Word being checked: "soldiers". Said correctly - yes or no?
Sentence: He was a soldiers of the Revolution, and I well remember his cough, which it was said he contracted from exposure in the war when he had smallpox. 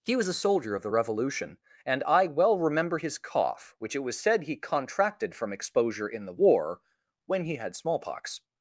no